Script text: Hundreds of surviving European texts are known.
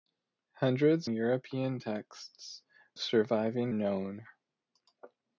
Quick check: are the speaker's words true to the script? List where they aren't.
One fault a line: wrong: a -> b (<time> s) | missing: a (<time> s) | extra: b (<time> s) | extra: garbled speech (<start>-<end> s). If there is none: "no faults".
missing: of surviving (1.1 s)
wrong: are -> surviving (3.0 s)